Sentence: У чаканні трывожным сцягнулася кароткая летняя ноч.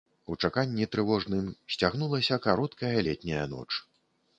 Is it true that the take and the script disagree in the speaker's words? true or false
false